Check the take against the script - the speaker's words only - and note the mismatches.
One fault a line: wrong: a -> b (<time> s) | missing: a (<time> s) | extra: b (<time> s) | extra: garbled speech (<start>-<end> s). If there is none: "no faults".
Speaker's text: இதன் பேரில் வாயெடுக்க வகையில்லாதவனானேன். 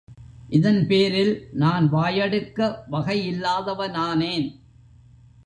extra: நான் (1.5 s)